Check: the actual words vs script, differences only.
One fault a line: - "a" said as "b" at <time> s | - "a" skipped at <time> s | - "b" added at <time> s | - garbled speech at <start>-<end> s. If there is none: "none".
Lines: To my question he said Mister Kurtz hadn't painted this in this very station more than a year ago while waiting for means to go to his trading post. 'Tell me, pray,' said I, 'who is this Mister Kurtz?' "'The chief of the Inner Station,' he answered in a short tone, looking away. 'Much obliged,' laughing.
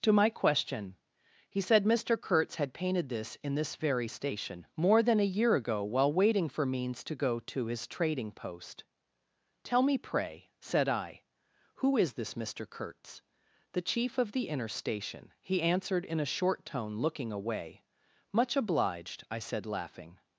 - "hadn't" said as "had" at 2.5 s
- "I said" added at 19.3 s